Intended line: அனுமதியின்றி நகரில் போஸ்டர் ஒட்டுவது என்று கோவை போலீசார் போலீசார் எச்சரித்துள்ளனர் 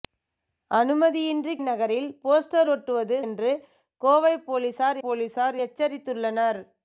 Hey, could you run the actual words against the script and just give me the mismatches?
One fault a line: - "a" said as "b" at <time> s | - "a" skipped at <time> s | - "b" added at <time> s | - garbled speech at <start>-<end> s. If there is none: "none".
none